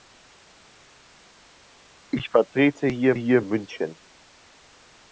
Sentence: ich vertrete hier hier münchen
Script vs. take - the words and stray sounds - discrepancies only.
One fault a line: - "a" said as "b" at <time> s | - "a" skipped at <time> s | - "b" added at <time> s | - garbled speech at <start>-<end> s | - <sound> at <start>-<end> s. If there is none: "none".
none